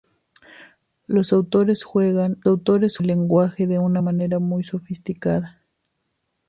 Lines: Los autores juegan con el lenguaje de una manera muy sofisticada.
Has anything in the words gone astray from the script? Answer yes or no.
yes